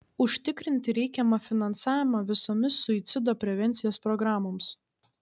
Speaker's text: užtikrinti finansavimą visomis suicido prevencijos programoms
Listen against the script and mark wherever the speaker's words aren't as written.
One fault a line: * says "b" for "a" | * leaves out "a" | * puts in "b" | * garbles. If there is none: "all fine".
* puts in "reikiamą"